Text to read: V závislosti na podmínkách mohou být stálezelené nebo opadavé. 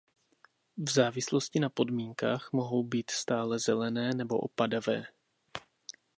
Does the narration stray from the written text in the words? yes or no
no